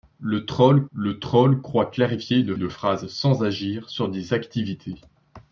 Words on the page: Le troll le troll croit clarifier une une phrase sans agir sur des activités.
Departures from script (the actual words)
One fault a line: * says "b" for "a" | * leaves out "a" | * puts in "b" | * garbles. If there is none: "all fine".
all fine